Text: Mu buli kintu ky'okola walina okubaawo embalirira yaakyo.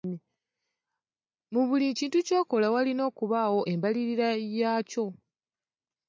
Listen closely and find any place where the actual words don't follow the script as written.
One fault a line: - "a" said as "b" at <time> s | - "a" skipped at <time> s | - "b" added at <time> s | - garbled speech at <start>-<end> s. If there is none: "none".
none